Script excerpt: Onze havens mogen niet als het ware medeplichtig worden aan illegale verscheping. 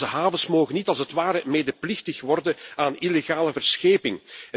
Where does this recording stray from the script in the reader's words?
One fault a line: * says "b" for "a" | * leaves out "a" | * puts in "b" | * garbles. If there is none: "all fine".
all fine